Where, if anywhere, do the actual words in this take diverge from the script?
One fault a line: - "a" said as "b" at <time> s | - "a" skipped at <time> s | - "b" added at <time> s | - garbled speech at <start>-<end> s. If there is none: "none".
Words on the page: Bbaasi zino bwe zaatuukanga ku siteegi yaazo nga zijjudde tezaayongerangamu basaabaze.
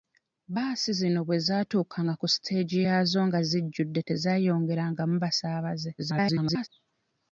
- garbled speech at 6.0-6.7 s